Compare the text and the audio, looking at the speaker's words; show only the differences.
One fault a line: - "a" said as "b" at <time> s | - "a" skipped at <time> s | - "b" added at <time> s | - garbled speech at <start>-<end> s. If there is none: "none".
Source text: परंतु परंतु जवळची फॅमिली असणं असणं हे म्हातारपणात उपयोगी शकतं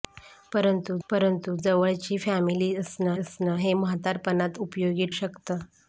none